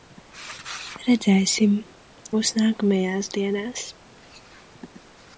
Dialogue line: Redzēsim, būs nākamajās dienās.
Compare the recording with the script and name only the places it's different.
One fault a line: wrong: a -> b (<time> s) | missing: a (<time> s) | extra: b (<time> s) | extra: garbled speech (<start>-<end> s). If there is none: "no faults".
no faults